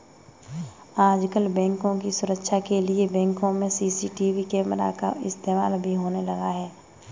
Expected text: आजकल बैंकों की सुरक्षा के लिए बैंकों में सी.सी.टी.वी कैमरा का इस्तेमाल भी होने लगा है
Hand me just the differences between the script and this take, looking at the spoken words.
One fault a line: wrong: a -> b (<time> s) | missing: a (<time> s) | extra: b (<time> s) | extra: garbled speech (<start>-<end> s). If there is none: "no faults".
no faults